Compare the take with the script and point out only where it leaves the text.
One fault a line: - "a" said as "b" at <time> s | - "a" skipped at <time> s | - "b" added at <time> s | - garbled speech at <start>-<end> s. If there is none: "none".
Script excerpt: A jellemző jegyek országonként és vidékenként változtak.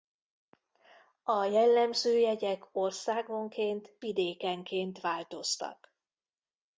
- "és" skipped at 4.0 s